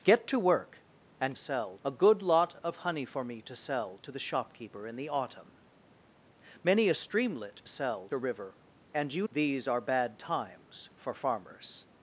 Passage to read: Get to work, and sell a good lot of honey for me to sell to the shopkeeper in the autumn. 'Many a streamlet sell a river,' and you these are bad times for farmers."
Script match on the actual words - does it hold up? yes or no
yes